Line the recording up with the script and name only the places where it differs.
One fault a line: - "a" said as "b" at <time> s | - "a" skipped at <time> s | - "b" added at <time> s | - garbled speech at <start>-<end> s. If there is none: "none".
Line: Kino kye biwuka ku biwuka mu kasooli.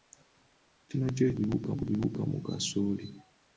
none